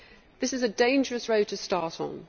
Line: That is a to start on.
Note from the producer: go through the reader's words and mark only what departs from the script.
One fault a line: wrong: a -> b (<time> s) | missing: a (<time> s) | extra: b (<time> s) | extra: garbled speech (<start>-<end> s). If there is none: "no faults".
wrong: That -> This (0.4 s)
extra: dangerous road (0.7 s)